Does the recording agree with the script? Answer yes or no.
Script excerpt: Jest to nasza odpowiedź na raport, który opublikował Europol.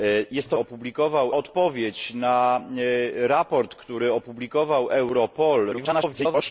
no